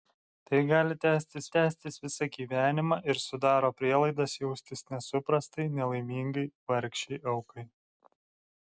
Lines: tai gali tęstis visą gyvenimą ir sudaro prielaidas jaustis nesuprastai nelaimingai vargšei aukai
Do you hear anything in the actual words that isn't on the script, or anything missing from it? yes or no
yes